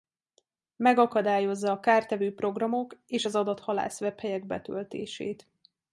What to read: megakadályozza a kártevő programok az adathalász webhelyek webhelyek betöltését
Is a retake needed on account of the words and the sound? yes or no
yes